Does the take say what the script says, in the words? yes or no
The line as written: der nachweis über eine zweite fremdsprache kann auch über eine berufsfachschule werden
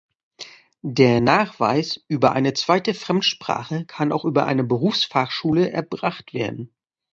no